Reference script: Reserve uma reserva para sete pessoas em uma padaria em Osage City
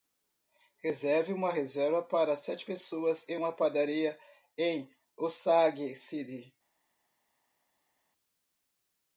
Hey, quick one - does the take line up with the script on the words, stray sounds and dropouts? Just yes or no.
yes